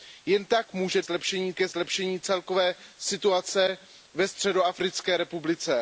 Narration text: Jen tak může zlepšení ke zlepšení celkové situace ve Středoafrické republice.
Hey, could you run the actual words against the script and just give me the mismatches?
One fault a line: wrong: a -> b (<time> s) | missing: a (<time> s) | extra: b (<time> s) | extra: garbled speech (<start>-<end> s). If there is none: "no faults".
no faults